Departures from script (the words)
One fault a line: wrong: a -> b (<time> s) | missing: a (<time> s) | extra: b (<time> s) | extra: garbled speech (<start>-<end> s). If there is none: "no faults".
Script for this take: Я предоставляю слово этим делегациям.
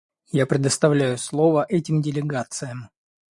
no faults